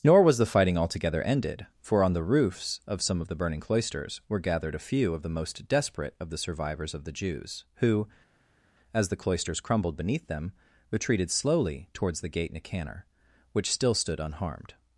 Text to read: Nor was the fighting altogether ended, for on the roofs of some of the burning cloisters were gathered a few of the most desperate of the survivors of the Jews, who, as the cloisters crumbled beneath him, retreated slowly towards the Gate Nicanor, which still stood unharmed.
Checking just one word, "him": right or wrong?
wrong